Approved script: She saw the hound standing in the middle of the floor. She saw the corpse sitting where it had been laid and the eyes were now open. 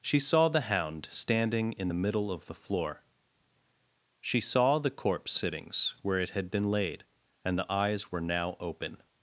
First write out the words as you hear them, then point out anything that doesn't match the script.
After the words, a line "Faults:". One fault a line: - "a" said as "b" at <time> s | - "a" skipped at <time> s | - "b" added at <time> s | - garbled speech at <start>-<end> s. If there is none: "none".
She saw the hound standing in the middle of the floor. She saw the corpse sittings where it had been laid and the eyes were now open.
Faults:
- "sitting" said as "sittings" at 5.3 s